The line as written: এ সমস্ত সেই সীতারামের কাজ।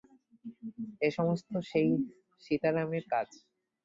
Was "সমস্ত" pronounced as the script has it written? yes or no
yes